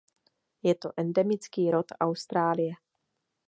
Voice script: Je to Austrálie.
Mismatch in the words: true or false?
true